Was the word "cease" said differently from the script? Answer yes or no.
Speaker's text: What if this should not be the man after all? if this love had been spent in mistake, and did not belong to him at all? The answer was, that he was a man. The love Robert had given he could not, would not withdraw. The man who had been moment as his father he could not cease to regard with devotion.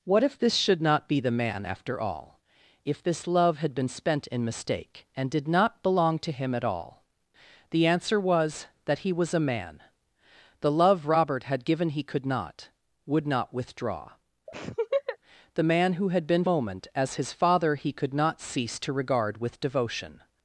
no